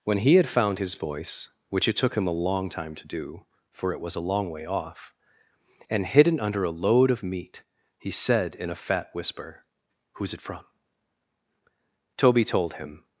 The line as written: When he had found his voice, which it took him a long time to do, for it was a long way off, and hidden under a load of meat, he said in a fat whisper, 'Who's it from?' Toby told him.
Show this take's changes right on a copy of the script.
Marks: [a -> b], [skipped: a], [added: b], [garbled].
When he had found his voice, which it took him a long time to do, for it was a long way off, and hidden under a load of meat, he said in a fat whisper, 'Who's it from?' Toby told him.